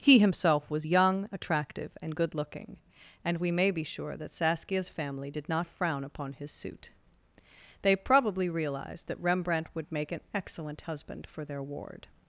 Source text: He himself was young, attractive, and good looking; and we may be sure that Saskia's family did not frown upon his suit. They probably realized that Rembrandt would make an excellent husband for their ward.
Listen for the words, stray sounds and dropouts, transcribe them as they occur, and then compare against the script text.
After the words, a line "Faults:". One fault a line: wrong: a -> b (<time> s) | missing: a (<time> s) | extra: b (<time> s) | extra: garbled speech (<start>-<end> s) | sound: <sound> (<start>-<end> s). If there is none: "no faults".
He himself was young, attractive, and good looking; and we may be sure that Saskia's family did not frown upon his suit. They probably realized that Rembrandt would make an excellent husband for their ward.
Faults:
no faults